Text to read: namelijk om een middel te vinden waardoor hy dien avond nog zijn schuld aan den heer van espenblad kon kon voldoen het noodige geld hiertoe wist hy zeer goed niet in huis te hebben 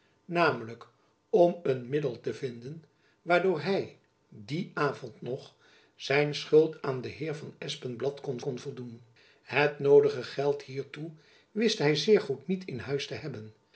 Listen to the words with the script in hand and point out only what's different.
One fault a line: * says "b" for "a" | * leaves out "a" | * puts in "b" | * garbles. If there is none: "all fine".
all fine